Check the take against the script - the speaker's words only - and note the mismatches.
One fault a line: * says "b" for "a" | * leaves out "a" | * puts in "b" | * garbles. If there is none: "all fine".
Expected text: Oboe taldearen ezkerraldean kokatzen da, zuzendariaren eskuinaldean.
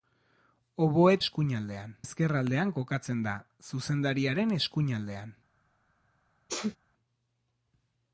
* says "eskuinaldean" for "taldearen"